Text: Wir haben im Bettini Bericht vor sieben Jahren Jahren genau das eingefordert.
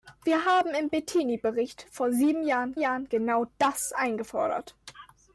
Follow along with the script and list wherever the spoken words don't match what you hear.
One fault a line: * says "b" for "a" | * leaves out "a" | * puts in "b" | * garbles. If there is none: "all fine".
all fine